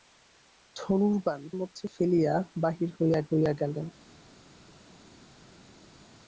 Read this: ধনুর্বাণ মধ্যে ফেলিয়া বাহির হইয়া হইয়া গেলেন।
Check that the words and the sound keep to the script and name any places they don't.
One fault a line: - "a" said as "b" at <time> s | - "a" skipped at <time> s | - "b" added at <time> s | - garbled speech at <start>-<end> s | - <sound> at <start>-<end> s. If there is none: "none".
none